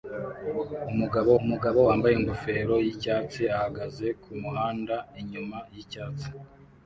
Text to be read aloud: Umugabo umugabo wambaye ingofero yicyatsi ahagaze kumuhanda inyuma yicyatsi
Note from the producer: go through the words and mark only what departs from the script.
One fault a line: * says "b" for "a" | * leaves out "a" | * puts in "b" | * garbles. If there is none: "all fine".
all fine